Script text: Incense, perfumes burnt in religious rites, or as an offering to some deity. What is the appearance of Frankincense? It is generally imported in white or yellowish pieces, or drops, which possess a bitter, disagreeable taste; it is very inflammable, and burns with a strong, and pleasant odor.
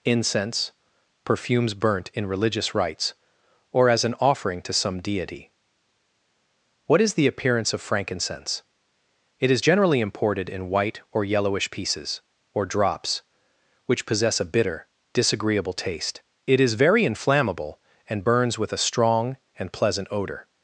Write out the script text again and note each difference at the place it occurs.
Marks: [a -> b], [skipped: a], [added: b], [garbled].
Incense, perfumes burnt in religious rites, or as an offering to some deity. What is the appearance of Frankincense? It is generally imported in white or yellowish pieces, or drops, which possess a bitter, disagreeable taste; it is very inflammable, and burns with a strong, and pleasant odor.